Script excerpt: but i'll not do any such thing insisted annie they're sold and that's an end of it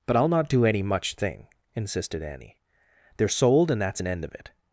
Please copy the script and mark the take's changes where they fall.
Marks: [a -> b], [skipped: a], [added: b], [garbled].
but i'll not do any [such -> much] thing insisted annie they're sold and that's an end of it